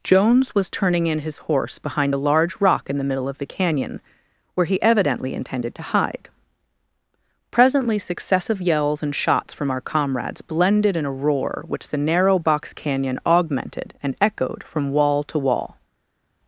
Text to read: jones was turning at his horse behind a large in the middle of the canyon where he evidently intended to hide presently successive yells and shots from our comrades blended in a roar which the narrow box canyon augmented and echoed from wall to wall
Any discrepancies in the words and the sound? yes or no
yes